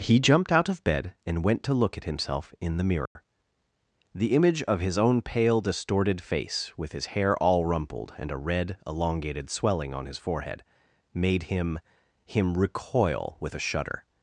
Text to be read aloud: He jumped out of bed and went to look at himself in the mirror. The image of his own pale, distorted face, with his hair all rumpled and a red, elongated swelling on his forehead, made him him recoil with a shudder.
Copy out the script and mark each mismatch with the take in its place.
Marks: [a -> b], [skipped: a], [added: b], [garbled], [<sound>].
He jumped out of bed and went to look at himself in the mirror. [dropout] The image of his own pale, distorted face, with his hair all rumpled and a red, elongated swelling on his forehead, made him him recoil with a shudder.